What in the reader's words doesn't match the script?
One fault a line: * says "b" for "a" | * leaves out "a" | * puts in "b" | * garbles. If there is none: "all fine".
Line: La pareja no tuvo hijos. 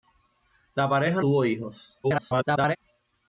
* leaves out "no"
* garbles